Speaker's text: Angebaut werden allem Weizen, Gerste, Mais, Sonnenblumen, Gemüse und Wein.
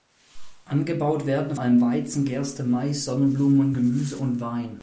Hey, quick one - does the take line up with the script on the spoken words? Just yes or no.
yes